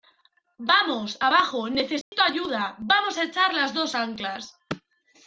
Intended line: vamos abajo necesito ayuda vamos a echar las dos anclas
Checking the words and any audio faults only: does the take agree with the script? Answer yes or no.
no